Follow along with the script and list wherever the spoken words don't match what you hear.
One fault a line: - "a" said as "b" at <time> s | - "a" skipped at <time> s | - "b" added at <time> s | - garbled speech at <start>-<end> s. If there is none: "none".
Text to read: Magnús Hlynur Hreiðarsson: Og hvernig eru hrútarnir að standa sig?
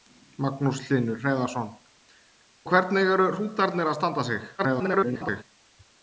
- "Og" skipped at 1.7 s
- garbled speech at 4.6-5.4 s